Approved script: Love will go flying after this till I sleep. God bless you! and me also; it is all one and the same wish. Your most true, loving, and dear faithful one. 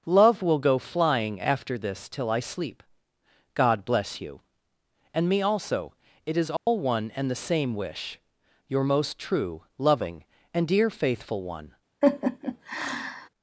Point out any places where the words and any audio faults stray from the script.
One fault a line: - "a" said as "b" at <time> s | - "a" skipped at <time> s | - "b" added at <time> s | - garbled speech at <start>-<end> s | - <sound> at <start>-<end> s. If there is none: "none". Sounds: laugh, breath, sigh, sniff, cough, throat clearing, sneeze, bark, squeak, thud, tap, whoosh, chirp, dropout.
- dropout at 6.6-6.7 s
- laugh at 12.0-13.3 s